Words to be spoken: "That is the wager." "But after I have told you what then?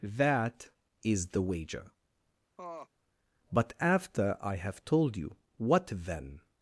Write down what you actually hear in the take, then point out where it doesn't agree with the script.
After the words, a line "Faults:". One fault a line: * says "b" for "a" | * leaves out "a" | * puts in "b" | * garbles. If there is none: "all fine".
"That is the wager." "But after I have told you what then?
Faults:
all fine